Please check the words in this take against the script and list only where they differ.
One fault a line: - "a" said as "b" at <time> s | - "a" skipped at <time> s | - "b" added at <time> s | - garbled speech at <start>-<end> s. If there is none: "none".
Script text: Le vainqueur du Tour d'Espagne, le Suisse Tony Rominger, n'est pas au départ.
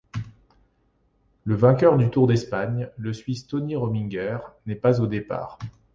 none